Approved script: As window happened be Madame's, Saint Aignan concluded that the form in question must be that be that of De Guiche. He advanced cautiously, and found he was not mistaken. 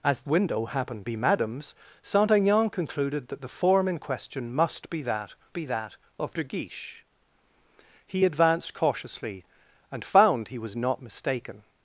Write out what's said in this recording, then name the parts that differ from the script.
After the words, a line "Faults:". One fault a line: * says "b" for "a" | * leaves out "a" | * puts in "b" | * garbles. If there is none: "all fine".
As window happened be Madame's, Saint Aignan concluded that the form in question must be that be that of De Guiche. He advanced cautiously, and found he was not mistaken.
Faults:
all fine